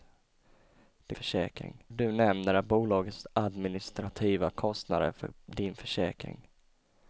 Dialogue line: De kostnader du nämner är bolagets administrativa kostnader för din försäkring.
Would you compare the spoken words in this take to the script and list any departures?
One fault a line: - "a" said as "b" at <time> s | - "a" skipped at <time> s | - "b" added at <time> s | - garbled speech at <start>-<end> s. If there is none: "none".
- "kostnader" said as "försäkring" at 1.1 s